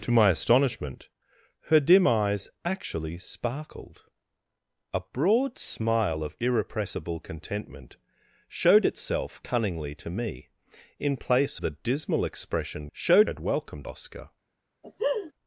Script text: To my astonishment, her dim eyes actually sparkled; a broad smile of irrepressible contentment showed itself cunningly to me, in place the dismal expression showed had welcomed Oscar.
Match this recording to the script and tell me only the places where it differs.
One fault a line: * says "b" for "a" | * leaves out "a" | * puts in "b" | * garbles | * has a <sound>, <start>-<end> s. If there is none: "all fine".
* has a laugh, 14.8-15.3 s